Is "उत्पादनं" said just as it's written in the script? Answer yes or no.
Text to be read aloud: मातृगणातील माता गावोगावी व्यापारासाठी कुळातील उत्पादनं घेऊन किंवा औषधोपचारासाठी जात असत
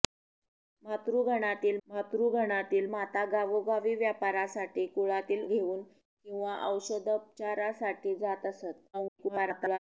no